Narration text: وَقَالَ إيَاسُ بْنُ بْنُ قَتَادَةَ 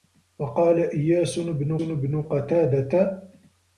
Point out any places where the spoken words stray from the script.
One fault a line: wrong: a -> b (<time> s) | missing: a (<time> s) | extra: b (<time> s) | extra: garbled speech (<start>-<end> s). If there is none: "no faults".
no faults